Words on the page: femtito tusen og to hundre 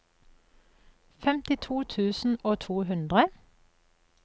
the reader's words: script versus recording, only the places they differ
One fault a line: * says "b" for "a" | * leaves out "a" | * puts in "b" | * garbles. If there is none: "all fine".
all fine